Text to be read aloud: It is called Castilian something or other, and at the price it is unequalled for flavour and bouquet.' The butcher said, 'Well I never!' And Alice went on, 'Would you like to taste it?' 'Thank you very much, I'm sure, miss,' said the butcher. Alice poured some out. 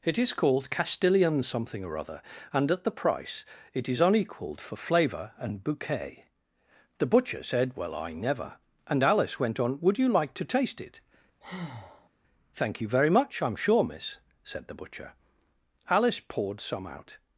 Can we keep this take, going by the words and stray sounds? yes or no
no